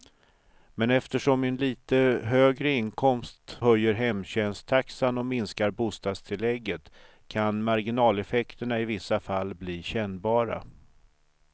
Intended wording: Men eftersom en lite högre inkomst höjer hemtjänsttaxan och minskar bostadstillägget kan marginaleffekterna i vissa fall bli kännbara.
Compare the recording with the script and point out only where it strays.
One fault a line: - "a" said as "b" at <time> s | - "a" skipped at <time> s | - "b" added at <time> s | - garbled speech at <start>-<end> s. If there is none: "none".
none